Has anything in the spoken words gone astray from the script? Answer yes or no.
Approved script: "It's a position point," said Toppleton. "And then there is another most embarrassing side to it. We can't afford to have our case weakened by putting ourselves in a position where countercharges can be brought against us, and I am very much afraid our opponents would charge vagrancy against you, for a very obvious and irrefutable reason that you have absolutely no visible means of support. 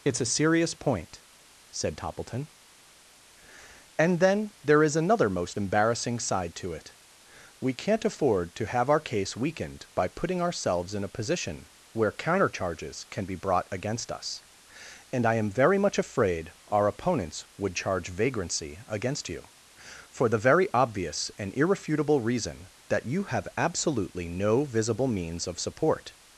yes